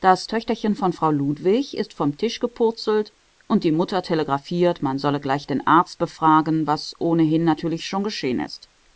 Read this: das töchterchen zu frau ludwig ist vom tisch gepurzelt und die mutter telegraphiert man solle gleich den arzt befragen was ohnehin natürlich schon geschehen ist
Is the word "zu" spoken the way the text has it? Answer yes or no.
no